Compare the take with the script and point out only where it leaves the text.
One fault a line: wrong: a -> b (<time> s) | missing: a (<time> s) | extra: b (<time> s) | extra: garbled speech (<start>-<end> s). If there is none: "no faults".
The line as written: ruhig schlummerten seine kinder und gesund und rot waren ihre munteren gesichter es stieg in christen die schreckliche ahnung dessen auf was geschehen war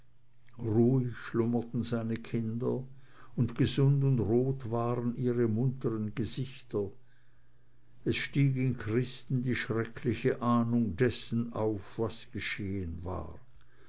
no faults